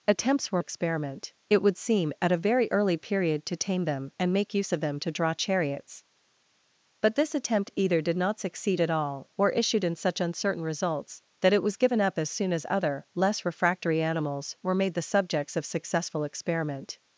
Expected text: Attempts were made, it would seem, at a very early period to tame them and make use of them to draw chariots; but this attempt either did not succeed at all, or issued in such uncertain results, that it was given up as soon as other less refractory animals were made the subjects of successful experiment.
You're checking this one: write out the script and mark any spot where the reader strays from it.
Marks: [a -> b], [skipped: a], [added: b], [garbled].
Attempts were [made, -> experiment] it would seem, at a very early period to tame them and make use of them to draw chariots; but this attempt either did not succeed at all, or issued in such uncertain results, that it was given up as soon as other less refractory animals were made the subjects of successful experiment.